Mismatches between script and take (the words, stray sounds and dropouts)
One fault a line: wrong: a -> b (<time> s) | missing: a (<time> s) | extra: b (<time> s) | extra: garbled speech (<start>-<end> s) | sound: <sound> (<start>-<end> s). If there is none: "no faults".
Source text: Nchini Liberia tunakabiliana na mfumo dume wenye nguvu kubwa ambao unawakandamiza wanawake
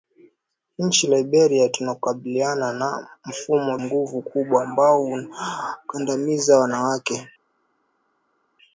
missing: dume wenye (3.8 s)